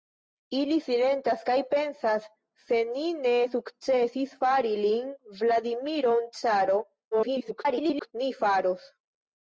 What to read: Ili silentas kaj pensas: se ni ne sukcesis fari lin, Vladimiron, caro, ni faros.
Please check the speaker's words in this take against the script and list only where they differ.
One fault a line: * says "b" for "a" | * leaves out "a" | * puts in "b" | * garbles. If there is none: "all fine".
* garbles